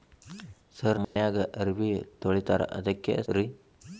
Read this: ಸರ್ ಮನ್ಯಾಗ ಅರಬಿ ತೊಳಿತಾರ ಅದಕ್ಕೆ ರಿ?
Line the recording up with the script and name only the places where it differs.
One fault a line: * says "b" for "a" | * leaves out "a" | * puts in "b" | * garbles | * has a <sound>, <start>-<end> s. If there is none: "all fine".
* has a dropout, 1.0-1.2 s